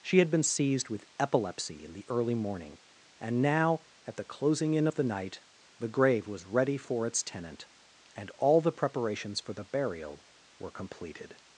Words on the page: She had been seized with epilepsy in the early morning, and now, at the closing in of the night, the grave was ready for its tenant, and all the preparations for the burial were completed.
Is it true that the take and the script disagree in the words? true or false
false